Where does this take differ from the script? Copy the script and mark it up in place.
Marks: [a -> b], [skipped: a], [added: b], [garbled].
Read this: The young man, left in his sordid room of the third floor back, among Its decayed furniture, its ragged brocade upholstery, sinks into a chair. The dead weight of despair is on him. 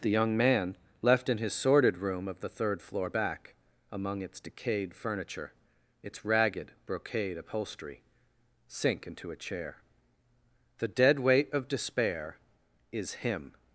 The young man, left in his sordid room of the third floor back, among Its decayed furniture, its ragged brocade upholstery, [sinks -> sink] into a chair. The dead weight of despair is [skipped: on] him.